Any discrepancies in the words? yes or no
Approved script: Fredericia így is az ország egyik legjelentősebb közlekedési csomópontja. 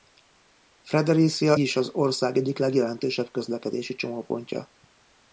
yes